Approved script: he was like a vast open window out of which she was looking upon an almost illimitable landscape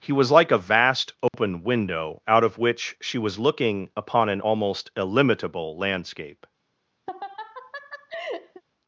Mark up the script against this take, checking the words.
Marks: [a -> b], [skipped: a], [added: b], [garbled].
he was like a vast open window out of which she was looking upon an almost illimitable landscape